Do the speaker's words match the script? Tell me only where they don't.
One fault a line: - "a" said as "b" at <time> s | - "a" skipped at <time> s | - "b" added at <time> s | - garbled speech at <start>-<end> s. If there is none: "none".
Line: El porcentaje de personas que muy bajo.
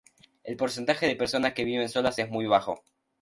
- "viven solas es" added at 1.6 s